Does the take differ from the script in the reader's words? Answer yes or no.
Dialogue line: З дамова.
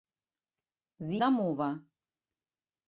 no